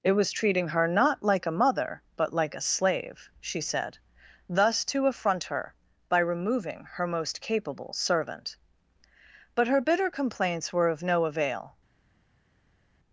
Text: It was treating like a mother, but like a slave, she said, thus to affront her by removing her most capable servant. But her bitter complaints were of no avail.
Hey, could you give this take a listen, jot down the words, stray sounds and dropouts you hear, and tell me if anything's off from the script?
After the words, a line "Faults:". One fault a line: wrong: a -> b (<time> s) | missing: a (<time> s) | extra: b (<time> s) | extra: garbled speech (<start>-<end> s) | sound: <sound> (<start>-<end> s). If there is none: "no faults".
It was treating her not like a mother, but like a slave, she said, thus to affront her by removing her most capable servant. But her bitter complaints were of no avail.
Faults:
extra: her not (0.7 s)